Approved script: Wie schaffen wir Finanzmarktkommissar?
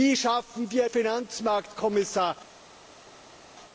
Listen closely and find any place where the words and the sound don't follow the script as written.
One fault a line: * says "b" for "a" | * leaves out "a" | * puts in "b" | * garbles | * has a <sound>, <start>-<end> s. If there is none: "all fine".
all fine